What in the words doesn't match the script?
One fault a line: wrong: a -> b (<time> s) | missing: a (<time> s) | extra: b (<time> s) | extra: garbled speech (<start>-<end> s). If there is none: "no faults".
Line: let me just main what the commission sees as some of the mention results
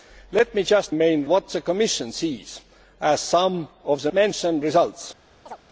no faults